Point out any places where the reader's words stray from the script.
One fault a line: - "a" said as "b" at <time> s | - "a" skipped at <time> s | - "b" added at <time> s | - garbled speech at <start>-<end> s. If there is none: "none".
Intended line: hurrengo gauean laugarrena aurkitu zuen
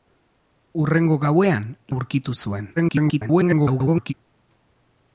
- "laugarrena" skipped at 1.7 s
- garbled speech at 2.8-4.1 s